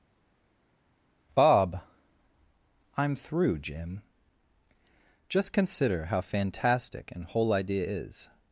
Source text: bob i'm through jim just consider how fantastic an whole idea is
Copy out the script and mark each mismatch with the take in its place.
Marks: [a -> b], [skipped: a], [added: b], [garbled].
bob i'm through jim just consider how fantastic an whole idea is